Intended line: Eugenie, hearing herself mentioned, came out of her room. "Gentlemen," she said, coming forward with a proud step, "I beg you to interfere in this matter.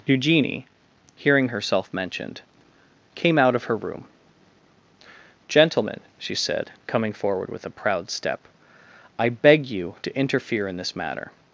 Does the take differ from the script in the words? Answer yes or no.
no